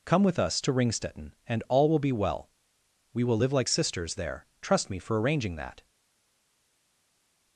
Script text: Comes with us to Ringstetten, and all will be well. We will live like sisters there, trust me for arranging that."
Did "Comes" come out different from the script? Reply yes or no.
yes